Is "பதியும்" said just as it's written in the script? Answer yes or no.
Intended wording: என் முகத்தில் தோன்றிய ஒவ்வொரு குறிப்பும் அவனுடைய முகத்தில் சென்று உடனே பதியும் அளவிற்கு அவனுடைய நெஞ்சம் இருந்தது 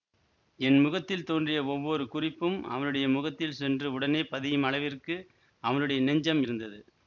yes